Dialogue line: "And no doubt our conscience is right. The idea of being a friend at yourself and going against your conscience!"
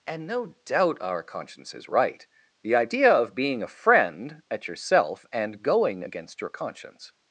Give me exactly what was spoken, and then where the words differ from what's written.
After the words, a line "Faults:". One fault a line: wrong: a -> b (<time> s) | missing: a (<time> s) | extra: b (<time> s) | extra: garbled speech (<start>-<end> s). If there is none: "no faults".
"And no doubt our conscience is right. The idea of being a friend at yourself and going against your conscience!"
Faults:
no faults